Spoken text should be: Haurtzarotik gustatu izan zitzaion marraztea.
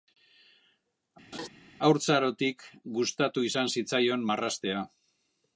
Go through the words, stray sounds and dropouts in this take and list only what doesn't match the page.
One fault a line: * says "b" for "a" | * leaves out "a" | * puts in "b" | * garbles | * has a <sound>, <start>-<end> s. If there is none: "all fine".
* has a laugh, 1.3-1.5 s